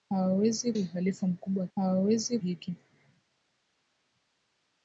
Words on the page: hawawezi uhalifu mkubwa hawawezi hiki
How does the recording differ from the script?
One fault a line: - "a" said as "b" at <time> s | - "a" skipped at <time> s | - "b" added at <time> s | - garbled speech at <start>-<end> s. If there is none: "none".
none